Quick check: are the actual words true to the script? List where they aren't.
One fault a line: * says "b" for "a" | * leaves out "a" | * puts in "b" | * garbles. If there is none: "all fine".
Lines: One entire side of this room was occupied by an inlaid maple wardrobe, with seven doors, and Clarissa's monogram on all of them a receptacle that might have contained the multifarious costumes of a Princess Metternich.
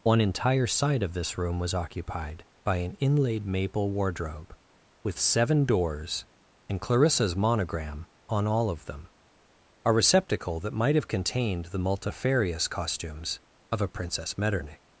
all fine